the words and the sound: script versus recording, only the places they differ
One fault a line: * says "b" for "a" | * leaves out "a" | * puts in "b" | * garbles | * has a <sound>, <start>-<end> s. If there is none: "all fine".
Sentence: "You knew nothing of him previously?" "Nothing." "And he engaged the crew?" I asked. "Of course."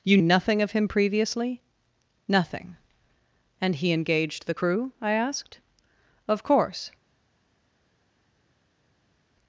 * leaves out "knew"